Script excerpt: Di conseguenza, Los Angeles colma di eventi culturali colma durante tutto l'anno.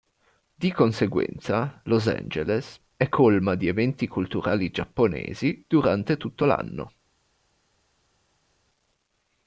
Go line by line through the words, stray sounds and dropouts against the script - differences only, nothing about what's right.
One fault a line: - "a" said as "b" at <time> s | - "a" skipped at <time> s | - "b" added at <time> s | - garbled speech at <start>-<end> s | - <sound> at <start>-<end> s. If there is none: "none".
- "è" added at 3.0 s
- "colma" said as "giapponesi" at 4.7 s